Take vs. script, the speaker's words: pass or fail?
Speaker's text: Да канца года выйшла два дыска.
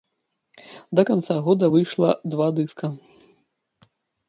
pass